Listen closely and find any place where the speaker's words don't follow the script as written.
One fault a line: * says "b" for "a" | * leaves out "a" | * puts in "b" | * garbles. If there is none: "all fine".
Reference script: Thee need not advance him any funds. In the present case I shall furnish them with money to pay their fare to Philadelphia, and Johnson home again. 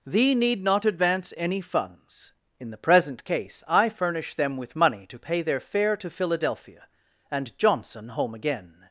* leaves out "him"
* leaves out "shall"